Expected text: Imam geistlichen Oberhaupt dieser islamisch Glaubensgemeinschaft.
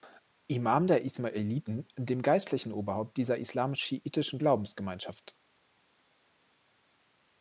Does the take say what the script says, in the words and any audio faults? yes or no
no